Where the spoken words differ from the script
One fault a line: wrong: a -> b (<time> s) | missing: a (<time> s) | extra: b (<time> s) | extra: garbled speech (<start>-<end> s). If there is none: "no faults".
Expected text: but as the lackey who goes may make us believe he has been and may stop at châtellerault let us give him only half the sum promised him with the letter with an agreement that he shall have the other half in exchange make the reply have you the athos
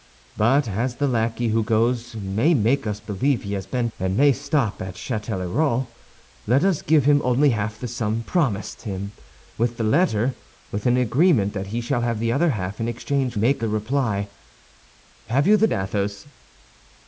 no faults